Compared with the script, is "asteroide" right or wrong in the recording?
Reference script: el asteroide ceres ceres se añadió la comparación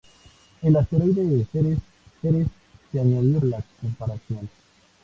right